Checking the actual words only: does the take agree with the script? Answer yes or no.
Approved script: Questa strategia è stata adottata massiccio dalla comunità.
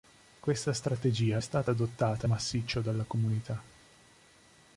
yes